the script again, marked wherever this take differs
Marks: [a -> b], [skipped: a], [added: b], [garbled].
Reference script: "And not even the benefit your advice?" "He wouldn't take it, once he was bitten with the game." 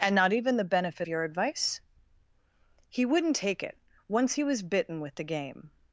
"And not even the benefit your advice?" "He wouldn't take it, once he was bitten with the game."